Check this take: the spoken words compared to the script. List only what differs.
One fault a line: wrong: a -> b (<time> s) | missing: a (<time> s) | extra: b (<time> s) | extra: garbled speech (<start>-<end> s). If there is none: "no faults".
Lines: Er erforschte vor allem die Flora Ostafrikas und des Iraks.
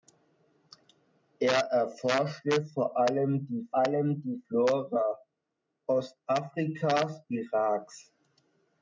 extra: allem die (3.8 s)
missing: und des (7.2 s)